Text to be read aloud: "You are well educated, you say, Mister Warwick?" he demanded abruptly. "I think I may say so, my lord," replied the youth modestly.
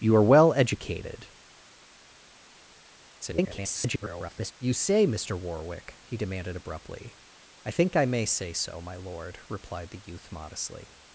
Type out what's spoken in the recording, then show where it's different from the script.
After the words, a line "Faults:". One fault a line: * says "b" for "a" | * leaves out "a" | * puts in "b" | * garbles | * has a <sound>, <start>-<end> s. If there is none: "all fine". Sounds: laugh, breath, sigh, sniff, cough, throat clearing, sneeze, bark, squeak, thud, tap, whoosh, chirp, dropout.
"You are well educated, [garbled] you say, Mister Warwick?" he demanded abruptly. "I think I may say so, my lord," replied the youth modestly.
Faults:
* garbles